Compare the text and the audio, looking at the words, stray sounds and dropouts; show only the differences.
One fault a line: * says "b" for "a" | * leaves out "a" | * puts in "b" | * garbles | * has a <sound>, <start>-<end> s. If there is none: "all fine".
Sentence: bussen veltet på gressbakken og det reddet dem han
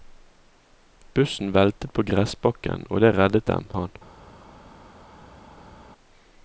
all fine